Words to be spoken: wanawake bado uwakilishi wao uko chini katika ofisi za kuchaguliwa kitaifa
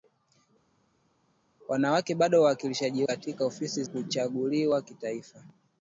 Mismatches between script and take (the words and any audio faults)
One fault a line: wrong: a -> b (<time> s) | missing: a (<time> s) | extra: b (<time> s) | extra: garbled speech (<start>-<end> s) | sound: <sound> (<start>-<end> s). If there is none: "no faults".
missing: wao uko chini (3.0 s)
missing: za (3.8 s)